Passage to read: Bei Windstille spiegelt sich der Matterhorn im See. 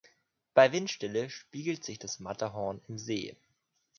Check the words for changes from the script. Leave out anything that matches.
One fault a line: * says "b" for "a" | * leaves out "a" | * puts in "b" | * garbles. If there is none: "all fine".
* says "das" for "der"